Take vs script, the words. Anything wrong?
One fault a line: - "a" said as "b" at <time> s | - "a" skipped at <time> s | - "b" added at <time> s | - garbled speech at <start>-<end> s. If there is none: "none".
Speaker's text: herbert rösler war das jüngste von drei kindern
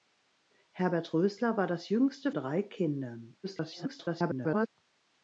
- "von" skipped at 2.3 s
- garbled speech at 3.4-4.7 s